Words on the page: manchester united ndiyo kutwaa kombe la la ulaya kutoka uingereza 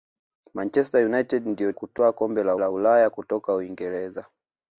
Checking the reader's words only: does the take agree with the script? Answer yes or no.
yes